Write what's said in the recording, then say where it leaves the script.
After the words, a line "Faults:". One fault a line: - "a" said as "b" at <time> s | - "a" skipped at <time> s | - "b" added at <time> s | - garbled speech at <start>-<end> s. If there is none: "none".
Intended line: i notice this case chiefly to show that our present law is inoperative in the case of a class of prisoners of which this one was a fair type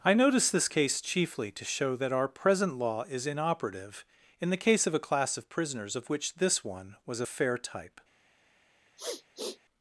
i notice this case chiefly to show that our present law is inoperative in the case of a class of prisoners of which this one was a fair type
Faults:
none